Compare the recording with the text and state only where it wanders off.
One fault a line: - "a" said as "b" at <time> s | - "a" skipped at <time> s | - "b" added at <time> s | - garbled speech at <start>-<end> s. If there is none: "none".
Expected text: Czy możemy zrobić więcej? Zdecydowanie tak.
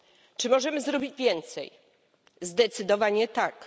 none